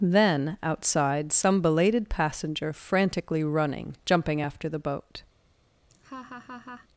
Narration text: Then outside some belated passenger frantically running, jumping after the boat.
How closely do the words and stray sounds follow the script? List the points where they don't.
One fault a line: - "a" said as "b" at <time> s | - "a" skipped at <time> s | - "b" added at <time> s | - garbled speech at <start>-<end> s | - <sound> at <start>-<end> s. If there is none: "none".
- laugh at 5.9-6.9 s